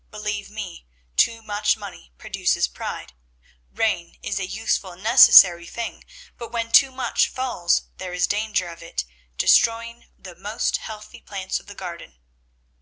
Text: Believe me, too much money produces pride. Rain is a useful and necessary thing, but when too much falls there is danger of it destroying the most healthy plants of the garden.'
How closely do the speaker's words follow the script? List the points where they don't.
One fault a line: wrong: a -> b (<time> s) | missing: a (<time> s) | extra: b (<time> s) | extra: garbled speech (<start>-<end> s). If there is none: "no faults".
no faults